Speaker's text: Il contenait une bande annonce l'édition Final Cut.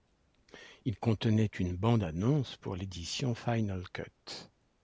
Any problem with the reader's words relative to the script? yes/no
yes